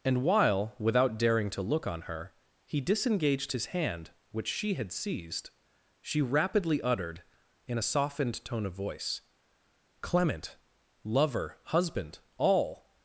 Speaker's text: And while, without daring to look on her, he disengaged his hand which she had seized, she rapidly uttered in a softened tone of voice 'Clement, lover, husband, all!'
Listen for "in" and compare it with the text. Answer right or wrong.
right